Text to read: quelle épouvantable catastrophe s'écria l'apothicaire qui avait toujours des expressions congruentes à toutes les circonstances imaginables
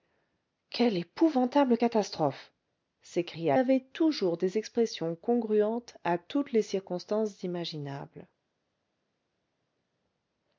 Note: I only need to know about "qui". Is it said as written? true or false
false